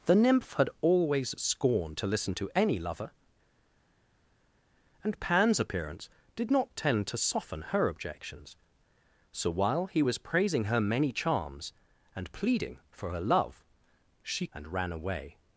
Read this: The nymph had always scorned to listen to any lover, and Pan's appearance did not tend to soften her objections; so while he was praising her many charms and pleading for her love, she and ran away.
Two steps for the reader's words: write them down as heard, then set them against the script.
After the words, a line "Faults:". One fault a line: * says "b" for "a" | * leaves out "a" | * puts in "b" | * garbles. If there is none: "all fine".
The nymph had always scorned to listen to any lover, and Pan's appearance did not tend to soften her objections; so while he was praising her many charms and pleading for her love, she and ran away.
Faults:
all fine